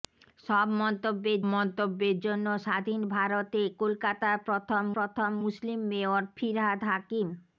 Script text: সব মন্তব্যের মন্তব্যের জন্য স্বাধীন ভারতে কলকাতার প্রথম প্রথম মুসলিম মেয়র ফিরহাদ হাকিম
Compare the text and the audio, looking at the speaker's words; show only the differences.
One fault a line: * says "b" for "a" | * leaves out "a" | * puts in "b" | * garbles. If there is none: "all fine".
all fine